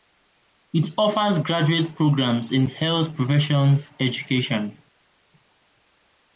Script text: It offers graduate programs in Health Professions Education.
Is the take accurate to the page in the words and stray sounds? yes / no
yes